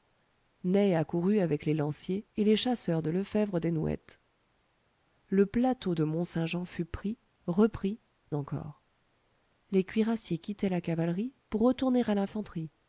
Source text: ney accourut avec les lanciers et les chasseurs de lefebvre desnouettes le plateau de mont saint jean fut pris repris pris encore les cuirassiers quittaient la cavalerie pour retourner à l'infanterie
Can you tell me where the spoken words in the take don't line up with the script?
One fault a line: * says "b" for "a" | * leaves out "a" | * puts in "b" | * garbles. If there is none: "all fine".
* leaves out "pris"